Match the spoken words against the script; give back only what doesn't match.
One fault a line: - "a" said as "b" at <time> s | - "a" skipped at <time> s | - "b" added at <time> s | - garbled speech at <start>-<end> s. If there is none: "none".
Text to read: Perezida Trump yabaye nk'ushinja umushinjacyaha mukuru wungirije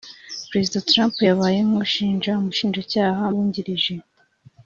- "mukuru" skipped at 3.2 s